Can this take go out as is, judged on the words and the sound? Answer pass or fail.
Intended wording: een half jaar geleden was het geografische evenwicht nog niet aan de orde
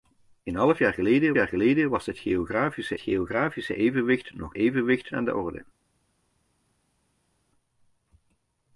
fail